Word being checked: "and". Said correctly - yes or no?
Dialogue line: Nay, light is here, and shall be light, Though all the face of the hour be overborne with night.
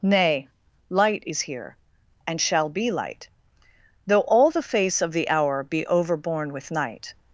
yes